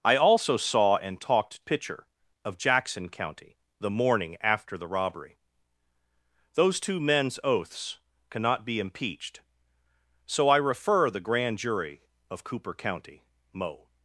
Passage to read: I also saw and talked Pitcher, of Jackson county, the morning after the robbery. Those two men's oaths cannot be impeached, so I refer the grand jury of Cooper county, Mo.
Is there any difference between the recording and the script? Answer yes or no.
no